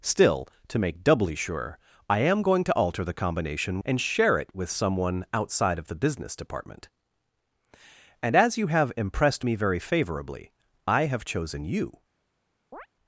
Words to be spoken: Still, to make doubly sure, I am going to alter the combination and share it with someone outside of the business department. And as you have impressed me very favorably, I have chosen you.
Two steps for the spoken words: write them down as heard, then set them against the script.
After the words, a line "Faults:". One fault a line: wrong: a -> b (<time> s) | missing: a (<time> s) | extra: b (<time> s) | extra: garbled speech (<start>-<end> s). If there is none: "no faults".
Still, to make doubly sure, I am going to alter the combination and share it with someone outside of the business department. And as you have impressed me very favorably, I have chosen you.
Faults:
no faults